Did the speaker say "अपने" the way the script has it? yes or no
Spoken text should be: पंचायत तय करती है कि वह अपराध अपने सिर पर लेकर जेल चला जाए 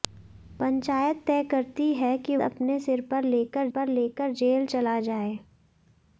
no